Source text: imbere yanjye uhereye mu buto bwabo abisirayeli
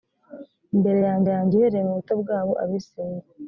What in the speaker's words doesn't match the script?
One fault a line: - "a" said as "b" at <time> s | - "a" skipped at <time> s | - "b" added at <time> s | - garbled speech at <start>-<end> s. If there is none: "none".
- "yanjye" added at 1.3 s